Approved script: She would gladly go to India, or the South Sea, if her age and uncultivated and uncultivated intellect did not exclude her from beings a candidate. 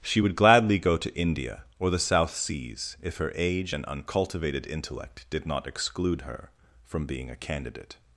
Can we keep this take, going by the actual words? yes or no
no